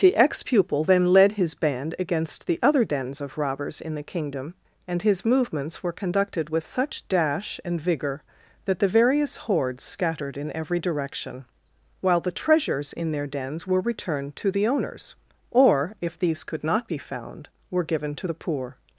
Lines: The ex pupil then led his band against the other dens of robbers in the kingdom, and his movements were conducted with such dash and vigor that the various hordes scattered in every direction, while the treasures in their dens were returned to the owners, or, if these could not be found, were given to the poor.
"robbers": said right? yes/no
yes